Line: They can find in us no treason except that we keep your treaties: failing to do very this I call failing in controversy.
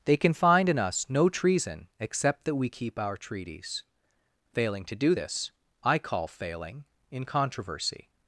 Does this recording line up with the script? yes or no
no